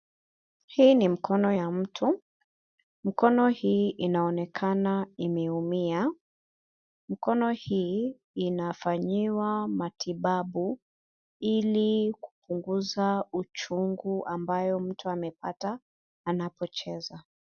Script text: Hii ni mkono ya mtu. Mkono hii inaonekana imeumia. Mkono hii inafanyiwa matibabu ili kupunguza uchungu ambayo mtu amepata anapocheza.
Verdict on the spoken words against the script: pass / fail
pass